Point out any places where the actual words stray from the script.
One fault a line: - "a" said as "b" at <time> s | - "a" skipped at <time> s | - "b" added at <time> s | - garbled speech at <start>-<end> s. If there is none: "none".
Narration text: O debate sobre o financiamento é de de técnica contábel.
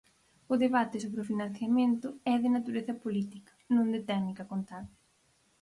- "natureza política non" added at 2.6 s